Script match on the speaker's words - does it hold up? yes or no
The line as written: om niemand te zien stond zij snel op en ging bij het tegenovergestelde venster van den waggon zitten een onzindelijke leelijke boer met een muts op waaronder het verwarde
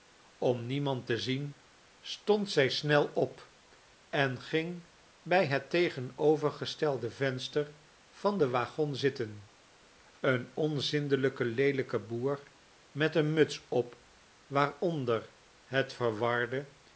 yes